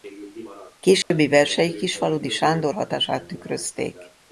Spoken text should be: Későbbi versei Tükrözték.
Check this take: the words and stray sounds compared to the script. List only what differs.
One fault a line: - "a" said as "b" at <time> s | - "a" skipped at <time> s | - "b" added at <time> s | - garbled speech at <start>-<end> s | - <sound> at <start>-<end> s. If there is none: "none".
- dropout at 1.0-1.1 s
- "Kisfaludy Sándor hatását" added at 1.8 s